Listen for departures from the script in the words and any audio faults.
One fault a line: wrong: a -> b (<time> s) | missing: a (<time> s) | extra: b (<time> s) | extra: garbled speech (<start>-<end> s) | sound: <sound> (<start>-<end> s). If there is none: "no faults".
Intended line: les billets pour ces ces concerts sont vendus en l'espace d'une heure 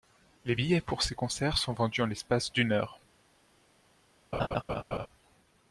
missing: ces (1.1 s)
sound: laugh (4.3-5.1 s)